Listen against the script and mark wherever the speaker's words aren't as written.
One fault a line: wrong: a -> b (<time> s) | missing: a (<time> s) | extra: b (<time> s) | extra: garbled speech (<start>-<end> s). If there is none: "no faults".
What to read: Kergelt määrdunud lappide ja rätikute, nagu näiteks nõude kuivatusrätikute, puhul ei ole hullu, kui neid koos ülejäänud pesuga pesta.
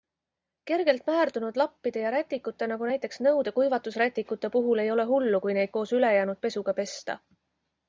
no faults